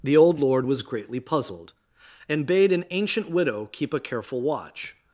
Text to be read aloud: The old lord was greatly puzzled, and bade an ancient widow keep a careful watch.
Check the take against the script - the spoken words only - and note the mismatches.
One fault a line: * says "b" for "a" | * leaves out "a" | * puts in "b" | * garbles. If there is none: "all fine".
all fine